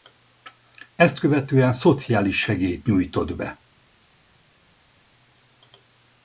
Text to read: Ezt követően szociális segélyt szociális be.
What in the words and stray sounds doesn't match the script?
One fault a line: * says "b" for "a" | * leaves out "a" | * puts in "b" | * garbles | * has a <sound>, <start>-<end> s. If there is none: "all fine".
* says "nyújtott" for "szociális"